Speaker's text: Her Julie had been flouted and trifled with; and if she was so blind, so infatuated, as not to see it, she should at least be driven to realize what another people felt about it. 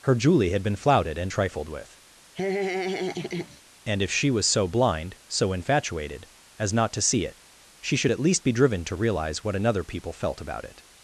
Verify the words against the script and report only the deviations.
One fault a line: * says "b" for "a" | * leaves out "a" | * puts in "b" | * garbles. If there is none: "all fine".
all fine